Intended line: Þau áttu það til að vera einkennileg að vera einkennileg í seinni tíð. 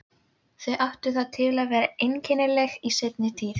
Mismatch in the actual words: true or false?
true